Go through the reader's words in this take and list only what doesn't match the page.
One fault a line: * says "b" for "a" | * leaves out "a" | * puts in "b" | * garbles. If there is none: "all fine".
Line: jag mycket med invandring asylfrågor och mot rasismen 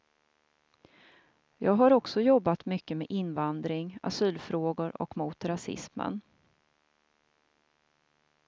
* puts in "har också jobbat"